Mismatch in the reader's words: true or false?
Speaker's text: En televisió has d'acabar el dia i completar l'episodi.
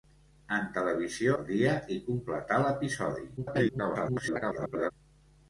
true